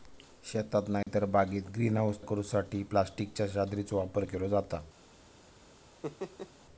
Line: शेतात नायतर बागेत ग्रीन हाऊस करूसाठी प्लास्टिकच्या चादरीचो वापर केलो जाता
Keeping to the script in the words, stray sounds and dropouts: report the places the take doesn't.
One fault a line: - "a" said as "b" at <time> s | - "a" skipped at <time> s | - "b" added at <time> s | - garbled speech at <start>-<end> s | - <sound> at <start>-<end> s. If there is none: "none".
- dropout at 1.0-1.1 s
- laugh at 6.0-6.5 s